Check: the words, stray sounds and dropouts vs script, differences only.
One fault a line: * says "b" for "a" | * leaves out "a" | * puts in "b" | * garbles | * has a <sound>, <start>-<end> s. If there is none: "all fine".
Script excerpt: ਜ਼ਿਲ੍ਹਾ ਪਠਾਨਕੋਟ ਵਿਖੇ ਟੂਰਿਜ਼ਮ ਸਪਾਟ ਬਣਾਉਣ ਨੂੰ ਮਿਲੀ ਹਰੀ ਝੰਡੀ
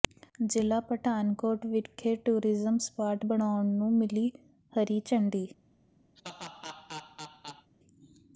* has a laugh, 6.2-7.7 s